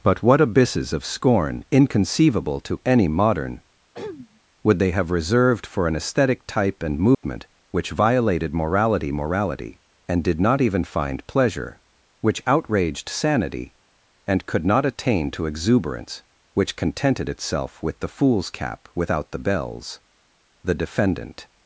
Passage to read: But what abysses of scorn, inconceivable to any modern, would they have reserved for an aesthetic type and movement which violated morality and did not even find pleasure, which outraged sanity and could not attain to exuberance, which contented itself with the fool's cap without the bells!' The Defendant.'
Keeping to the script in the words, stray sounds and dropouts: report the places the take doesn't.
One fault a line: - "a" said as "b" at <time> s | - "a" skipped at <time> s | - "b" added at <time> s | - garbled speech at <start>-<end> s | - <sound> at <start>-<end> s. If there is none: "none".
- throat clearing at 3.9-4.4 s
- dropout at 7.1-7.2 s
- "morality" added at 9.1 s